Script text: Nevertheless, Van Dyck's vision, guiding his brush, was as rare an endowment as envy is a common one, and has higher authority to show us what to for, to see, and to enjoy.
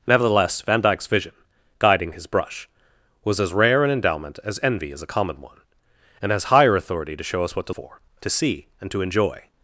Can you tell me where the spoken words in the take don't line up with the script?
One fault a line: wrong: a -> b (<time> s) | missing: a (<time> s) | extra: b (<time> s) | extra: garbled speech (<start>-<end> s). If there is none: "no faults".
no faults